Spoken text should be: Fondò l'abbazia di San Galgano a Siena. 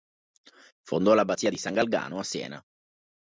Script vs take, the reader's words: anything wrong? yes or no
no